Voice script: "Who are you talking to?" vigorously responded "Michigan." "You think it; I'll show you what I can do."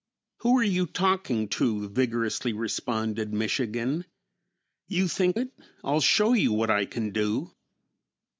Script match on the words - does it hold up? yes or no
yes